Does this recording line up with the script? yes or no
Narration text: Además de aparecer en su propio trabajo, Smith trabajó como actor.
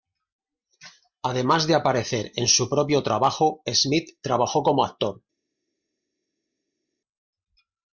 yes